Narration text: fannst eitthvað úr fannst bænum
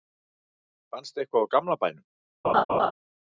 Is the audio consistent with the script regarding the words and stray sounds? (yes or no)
no